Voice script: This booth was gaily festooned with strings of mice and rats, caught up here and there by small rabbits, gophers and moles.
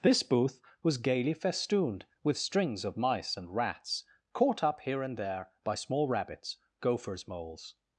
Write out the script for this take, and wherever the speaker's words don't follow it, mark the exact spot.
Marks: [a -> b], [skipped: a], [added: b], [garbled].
This booth was gaily festooned with strings of mice and rats, caught up here and there by small rabbits, gophers [skipped: and] moles.